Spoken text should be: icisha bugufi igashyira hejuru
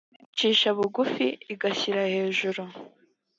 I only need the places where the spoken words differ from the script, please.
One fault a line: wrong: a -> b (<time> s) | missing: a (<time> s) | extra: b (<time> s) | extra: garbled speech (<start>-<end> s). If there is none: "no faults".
no faults